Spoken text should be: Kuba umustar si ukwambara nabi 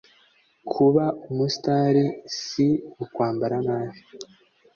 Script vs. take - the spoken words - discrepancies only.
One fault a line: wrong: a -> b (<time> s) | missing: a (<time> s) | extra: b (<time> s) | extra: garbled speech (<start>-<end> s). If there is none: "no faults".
no faults